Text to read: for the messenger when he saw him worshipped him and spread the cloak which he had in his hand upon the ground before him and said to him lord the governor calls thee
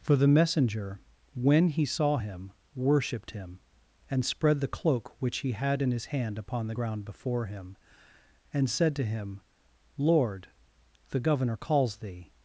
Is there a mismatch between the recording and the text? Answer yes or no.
no